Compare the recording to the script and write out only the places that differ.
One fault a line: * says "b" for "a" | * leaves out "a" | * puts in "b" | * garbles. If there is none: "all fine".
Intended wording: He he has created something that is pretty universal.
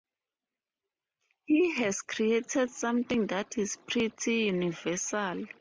* leaves out "he"